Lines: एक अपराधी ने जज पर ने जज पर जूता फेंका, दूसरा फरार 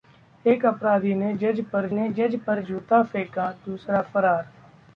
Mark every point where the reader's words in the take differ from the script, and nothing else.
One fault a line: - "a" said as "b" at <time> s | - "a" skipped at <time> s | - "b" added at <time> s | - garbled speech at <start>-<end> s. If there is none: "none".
none